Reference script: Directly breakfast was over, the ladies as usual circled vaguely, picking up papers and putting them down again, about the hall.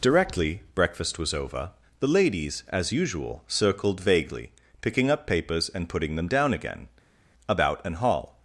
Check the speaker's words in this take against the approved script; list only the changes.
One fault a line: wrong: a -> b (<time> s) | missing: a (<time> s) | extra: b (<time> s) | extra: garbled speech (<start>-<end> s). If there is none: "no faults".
wrong: the -> an (7.9 s)